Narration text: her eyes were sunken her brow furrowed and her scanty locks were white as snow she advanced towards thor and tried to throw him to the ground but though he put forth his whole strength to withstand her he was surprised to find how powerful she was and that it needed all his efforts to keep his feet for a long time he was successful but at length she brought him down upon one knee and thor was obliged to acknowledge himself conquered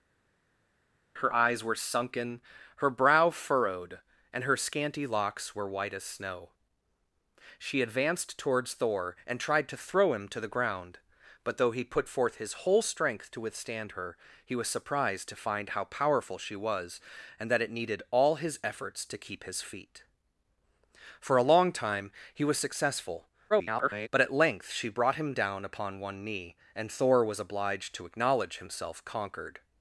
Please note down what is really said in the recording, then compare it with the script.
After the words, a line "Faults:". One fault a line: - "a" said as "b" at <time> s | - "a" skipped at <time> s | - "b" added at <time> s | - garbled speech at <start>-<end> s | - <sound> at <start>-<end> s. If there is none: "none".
her eyes were sunken her brow furrowed and her scanty locks were white as snow she advanced towards thor and tried to throw him to the ground but though he put forth his whole strength to withstand her he was surprised to find how powerful she was and that it needed all his efforts to keep his feet for a long time he was successful [garbled] but at length she brought him down upon one knee and thor was obliged to acknowledge himself conquered
Faults:
- garbled speech at 23.5-24.1 s